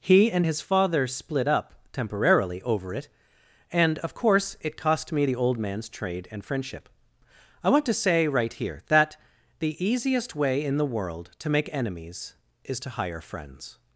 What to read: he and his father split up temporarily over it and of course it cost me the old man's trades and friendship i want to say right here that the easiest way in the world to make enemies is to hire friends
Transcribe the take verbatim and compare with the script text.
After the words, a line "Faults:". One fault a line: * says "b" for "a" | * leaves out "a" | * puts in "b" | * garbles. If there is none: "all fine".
he and his father split up temporarily over it and of course it cost me the old man's trade and friendship i want to say right here that the easiest way in the world to make enemies is to hire friends
Faults:
* says "trade" for "trades"